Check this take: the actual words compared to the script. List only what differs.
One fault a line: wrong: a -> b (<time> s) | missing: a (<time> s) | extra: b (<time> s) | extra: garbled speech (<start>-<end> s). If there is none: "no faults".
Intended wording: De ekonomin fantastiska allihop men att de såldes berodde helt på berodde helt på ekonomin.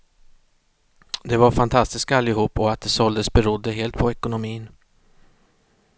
wrong: ekonomin -> var (1.4 s)
wrong: men -> och (2.6 s)
missing: berodde helt på (4.1 s)